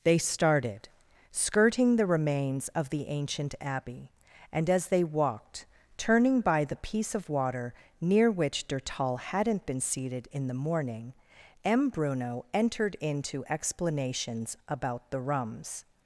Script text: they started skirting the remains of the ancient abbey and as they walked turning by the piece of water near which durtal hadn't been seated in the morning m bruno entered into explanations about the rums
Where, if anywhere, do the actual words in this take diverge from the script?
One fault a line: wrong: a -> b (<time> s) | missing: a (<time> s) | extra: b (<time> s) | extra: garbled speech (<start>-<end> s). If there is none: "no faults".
no faults